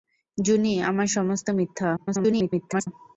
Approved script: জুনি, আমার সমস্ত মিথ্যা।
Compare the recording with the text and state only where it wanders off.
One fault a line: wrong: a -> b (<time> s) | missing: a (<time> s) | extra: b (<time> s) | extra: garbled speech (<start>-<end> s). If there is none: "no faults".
extra: garbled speech (2.0-2.9 s)